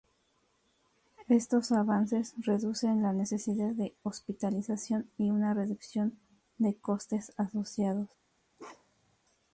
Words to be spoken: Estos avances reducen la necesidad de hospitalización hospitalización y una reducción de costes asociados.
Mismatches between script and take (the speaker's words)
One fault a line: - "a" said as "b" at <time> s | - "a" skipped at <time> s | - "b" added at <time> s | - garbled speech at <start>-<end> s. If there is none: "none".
- "hospitalización" skipped at 5.1 s